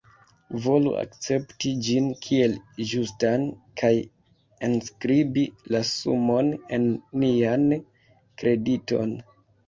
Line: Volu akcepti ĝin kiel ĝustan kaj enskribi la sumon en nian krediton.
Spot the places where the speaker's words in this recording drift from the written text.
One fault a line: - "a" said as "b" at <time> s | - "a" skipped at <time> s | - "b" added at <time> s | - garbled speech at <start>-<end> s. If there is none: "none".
none